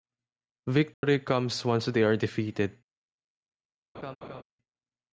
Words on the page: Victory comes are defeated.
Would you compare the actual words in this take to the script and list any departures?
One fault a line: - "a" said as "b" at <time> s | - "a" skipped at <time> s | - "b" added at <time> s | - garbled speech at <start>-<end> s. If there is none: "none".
- "once they" added at 1.6 s